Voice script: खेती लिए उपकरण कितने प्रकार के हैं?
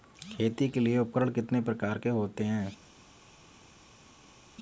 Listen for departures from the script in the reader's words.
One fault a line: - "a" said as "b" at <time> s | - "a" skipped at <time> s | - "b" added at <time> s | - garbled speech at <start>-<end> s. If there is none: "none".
- "के" added at 0.7 s
- "होते" added at 2.1 s